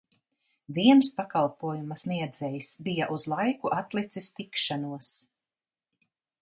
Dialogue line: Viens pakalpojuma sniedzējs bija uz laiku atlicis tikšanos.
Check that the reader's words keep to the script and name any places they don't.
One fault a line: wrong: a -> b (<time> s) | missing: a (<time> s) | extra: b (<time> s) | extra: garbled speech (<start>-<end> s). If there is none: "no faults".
no faults